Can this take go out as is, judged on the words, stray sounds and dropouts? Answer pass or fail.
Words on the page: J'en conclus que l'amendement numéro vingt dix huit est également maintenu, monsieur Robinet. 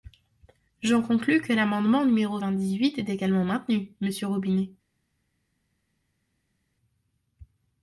pass